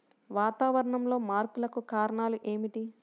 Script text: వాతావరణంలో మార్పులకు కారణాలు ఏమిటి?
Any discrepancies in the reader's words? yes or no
no